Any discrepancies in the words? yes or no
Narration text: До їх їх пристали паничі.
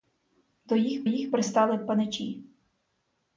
no